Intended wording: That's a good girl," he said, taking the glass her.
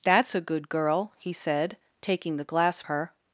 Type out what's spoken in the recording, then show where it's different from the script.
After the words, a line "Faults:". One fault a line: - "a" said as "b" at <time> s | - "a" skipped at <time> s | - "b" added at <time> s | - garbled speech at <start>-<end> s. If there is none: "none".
That's a good girl," he said, taking the glass her.
Faults:
none